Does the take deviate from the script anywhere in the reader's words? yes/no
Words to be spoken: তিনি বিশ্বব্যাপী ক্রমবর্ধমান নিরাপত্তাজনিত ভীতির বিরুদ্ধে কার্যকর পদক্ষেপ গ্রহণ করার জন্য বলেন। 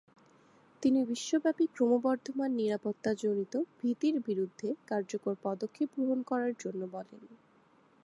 no